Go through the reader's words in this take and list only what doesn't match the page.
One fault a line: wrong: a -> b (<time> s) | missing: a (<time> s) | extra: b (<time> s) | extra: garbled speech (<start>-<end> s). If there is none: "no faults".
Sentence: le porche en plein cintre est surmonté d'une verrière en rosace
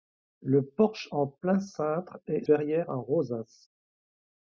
missing: surmonté d'une (2.4 s)